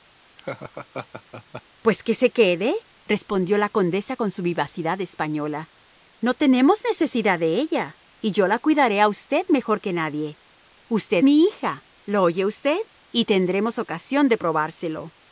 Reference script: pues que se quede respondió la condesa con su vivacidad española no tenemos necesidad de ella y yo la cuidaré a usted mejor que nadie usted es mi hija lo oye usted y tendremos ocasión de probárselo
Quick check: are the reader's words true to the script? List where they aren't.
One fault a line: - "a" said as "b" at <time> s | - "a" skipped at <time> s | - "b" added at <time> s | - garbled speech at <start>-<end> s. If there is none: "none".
- "es" skipped at 11.2 s